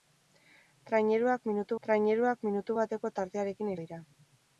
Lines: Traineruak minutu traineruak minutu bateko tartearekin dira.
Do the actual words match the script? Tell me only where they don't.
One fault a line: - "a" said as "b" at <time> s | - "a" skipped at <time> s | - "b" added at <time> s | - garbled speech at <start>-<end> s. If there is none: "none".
none